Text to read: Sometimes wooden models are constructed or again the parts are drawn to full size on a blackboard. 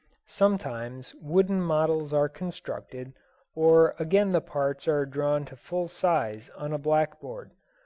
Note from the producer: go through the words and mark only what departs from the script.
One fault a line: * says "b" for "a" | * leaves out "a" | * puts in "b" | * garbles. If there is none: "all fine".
all fine